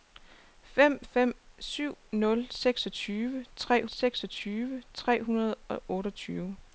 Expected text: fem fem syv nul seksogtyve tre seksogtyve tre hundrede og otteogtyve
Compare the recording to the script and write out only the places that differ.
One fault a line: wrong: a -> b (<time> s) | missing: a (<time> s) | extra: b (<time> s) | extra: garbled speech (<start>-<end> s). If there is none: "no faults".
no faults